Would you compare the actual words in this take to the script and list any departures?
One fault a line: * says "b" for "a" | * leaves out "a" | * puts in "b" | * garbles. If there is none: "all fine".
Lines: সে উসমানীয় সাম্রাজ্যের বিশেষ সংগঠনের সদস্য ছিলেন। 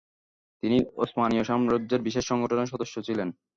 * says "তিনি" for "সে"